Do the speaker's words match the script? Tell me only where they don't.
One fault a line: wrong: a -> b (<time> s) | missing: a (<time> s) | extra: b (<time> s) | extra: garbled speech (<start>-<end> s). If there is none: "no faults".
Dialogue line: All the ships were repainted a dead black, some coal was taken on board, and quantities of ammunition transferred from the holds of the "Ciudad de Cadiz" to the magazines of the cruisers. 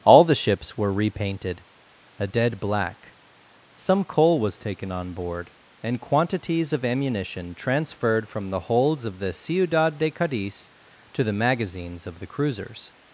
no faults